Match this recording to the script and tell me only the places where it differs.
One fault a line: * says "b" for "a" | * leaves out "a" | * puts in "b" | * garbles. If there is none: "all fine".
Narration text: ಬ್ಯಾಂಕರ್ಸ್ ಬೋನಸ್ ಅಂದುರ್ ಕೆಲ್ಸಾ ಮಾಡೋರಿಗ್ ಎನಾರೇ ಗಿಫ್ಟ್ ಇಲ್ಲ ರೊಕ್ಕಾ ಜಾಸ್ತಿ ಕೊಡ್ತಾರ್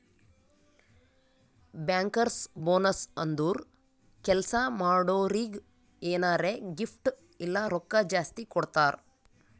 all fine